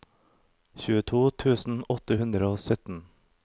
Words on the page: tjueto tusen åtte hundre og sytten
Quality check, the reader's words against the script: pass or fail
pass